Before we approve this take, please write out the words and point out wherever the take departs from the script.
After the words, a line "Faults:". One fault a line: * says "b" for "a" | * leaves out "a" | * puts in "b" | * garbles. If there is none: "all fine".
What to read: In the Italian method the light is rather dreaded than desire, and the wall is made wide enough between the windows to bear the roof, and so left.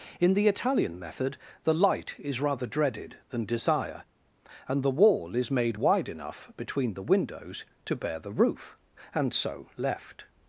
In the Italian method the light is rather dreaded than desire, and the wall is made wide enough between the windows to bear the roof, and so left.
Faults:
all fine